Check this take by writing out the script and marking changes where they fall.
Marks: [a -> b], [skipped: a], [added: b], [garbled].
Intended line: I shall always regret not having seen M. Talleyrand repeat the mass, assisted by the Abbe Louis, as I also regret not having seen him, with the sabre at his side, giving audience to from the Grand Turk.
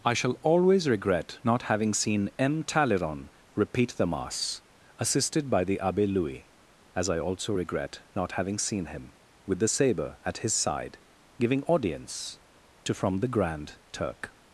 I shall always regret not having seen M. Talleyrand repeat the mass, assisted by the Abbe Louis, as I also regret not having seen him, with the sabre at his side, giving audience to from the Grand Turk.